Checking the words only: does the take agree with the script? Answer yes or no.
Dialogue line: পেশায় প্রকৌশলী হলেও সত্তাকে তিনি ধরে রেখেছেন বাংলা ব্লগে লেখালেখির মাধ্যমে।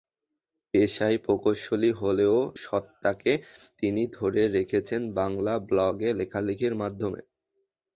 yes